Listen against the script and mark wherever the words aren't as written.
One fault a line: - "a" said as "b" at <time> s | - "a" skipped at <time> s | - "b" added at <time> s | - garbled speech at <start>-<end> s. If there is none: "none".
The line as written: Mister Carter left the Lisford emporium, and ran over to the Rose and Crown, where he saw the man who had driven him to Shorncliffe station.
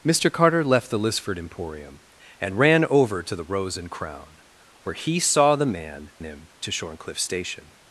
- "who had driven" skipped at 6.1 s